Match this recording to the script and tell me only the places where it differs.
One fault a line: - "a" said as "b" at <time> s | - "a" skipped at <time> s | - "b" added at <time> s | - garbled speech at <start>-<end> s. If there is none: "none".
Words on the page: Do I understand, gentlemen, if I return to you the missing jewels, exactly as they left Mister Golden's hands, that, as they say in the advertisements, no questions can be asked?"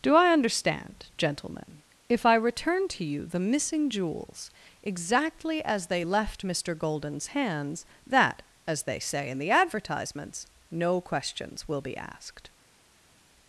- "can" said as "will" at 11.7 s